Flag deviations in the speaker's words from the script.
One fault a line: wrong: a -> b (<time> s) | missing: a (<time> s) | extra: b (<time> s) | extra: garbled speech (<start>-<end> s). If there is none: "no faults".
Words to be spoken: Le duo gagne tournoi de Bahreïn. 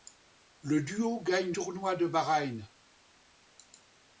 no faults